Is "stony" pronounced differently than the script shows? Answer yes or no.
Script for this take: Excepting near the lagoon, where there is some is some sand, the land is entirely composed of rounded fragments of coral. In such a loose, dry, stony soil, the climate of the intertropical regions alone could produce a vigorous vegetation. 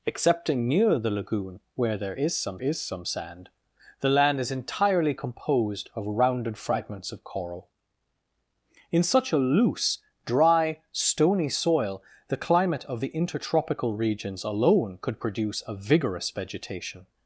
no